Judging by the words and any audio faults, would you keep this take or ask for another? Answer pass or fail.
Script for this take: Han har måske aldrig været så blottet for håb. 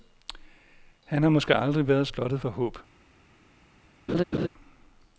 fail